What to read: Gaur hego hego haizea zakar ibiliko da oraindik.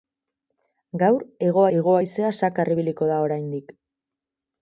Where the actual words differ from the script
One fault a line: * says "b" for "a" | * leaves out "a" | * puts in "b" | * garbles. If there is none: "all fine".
all fine